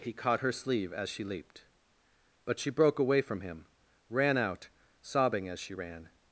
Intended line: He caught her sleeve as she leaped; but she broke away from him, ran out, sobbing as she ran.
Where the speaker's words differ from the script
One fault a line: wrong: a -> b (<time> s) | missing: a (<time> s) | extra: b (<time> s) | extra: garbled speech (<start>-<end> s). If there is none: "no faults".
no faults